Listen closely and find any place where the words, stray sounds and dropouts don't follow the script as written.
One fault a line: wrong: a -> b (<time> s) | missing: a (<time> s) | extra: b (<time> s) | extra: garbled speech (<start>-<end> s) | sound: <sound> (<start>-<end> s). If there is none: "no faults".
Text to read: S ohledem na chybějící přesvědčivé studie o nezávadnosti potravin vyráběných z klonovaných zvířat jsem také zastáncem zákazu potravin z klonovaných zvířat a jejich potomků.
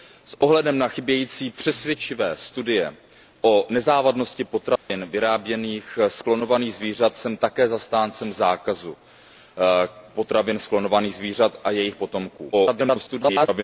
sound: dropout (4.8-4.9 s)
extra: garbled speech (12.5-13.6 s)